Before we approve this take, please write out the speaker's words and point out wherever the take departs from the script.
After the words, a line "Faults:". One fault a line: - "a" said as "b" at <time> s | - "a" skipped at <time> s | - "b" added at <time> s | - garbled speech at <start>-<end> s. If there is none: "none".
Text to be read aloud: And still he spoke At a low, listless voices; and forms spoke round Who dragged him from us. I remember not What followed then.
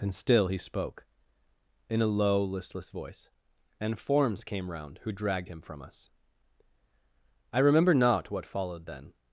And still he spoke In a low, listless voice; and forms came round Who dragged him from us. I remember not What followed then.
Faults:
- "At" said as "In" at 1.9 s
- "voices" said as "voice" at 2.9 s
- "spoke" said as "came" at 4.4 s